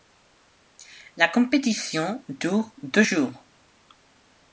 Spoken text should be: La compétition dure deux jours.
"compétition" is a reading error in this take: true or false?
false